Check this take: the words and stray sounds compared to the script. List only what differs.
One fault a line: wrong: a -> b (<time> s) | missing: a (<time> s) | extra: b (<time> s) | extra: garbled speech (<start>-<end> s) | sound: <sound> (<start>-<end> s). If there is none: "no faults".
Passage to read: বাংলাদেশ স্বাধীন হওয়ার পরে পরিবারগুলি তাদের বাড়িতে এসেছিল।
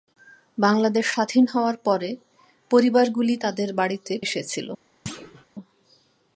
sound: thud (5.1-5.5 s)